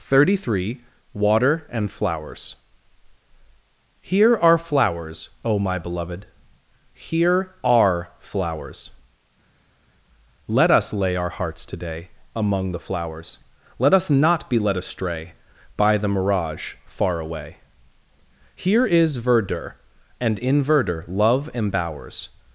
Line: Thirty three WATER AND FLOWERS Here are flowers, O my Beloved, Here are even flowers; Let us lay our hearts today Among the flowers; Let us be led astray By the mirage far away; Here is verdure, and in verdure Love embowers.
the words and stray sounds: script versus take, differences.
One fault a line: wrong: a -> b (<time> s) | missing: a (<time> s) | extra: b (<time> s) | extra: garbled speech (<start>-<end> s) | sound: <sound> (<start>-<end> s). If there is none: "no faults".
missing: even (8.1 s)
extra: not (14.1 s)